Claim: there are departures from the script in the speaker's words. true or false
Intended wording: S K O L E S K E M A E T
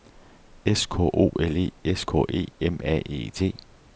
false